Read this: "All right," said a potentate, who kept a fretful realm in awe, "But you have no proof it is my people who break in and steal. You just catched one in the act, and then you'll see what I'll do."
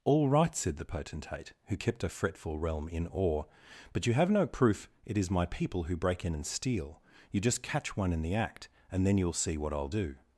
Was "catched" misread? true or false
true